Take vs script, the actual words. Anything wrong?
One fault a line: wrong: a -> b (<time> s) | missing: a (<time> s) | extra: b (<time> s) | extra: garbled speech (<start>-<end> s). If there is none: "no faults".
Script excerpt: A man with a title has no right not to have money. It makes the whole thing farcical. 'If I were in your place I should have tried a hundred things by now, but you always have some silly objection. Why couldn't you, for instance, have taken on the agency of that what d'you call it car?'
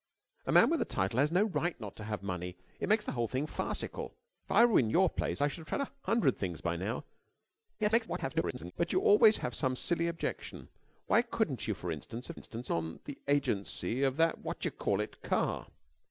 extra: garbled speech (7.8-8.7 s)
wrong: taken -> instance (12.3 s)